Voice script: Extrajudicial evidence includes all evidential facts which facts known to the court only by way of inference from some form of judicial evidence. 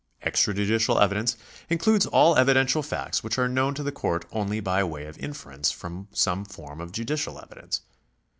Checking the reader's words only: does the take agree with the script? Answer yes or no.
no